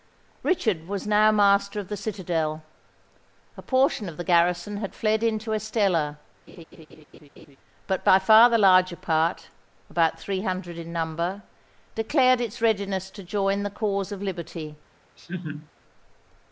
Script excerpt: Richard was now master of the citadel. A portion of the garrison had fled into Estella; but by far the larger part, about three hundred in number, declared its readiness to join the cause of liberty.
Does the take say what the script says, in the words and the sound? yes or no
no